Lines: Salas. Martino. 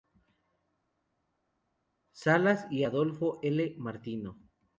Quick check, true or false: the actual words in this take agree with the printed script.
false